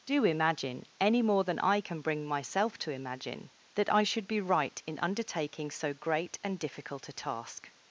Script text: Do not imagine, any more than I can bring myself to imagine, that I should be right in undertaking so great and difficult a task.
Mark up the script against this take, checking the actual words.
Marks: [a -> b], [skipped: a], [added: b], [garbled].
Do [skipped: not] imagine, any more than I can bring myself to imagine, that I should be right in undertaking so great and difficult a task.